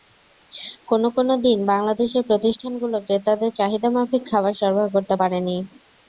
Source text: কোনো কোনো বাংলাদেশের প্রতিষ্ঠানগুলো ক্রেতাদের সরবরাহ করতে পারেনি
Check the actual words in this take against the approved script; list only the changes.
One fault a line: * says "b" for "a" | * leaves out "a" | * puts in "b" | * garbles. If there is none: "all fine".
* puts in "দিন"
* puts in "চাহিদামাফিক খাবার"